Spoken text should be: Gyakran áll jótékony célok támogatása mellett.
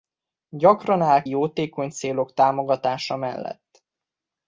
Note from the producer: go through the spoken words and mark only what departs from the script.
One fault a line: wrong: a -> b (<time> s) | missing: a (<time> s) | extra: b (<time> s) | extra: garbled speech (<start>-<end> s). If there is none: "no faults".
no faults